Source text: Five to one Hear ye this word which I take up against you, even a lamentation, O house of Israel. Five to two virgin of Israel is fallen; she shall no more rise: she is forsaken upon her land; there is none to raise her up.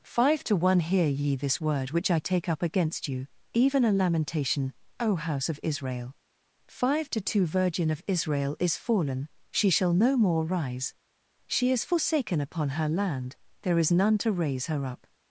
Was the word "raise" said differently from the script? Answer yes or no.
no